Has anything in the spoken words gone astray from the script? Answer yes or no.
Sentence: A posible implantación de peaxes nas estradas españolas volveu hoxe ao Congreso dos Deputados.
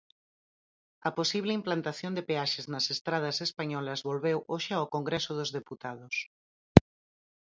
no